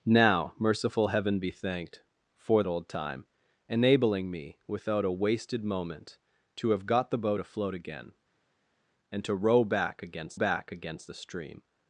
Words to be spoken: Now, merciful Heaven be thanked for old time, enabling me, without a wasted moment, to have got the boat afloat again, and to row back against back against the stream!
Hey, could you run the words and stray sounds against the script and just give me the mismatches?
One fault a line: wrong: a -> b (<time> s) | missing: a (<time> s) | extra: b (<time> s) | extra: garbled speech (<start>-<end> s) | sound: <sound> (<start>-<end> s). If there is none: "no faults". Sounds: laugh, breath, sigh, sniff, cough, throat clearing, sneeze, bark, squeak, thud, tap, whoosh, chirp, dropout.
no faults